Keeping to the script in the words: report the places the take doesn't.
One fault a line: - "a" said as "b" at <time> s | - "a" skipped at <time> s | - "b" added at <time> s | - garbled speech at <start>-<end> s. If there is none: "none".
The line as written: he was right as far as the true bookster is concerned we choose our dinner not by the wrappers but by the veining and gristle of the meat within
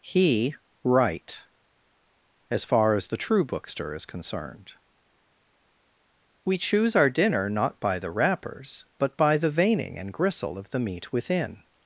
- "was" skipped at 0.6 s